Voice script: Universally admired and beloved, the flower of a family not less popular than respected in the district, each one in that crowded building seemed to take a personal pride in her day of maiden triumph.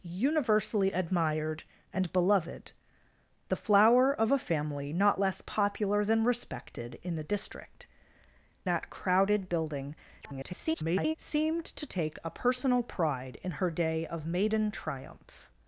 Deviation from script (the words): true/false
true